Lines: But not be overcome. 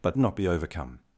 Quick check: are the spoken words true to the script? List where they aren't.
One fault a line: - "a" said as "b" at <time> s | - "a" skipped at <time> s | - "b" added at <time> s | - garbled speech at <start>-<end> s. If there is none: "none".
none